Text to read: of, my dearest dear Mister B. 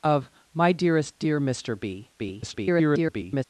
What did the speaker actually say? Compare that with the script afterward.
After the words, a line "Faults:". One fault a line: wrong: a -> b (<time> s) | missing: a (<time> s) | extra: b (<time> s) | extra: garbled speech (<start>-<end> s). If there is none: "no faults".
of, my dearest dear Mister B. [garbled]
Faults:
extra: garbled speech (2.2-3.4 s)